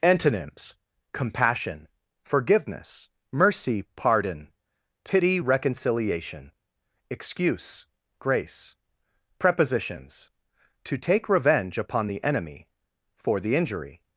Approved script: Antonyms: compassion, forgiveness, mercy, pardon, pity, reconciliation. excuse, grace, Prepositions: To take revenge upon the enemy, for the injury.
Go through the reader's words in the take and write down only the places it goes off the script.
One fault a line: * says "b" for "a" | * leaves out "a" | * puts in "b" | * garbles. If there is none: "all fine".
all fine